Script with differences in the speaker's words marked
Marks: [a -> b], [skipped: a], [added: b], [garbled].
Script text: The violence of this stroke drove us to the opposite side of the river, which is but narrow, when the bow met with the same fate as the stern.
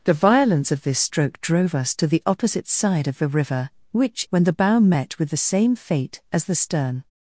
The violence of this stroke drove us to the opposite side of the river, which [skipped: is but narrow,] when the bow met with the same fate as the stern.